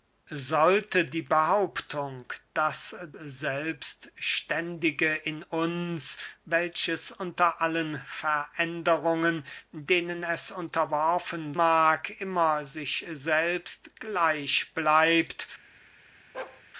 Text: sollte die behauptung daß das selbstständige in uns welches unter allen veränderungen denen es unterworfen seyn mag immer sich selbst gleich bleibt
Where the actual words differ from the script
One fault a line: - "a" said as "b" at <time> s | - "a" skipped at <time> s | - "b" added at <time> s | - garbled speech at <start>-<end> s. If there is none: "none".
- "das" skipped at 3.0 s
- "seyn" skipped at 11.5 s